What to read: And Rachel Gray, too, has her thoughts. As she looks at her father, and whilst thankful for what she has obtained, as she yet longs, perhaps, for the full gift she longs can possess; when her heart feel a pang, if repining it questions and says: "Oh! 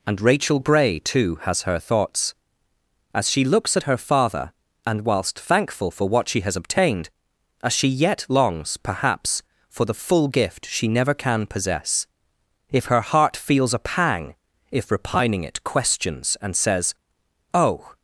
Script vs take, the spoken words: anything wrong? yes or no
yes